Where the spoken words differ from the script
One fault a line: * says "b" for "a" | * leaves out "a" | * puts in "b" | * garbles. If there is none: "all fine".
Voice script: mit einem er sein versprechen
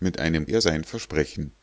all fine